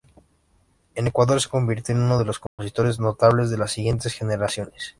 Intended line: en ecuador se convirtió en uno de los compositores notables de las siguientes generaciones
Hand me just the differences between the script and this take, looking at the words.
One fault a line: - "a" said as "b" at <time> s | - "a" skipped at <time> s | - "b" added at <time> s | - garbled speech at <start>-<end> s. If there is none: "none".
none